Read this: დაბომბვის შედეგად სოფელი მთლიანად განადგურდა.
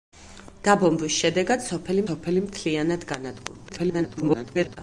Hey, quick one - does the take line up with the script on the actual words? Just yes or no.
no